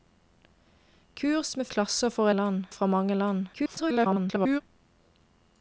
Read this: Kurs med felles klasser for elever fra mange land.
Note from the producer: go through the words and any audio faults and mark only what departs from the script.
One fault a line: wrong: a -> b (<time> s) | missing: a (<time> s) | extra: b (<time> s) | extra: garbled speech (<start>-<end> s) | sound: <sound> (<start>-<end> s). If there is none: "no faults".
missing: felles (1.7 s)
wrong: elever -> land (2.3 s)
extra: garbled speech (3.5-4.6 s)